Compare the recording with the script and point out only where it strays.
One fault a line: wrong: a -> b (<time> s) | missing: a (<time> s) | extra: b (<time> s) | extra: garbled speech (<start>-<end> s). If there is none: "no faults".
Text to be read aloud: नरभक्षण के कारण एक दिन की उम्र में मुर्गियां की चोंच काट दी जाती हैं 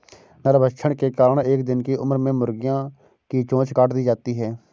no faults